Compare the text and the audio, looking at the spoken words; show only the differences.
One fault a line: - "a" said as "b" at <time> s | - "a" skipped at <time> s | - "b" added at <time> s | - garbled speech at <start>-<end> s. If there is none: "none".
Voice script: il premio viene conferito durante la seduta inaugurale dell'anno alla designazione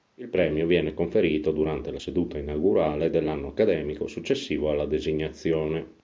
- "accademico successivo" added at 3.5 s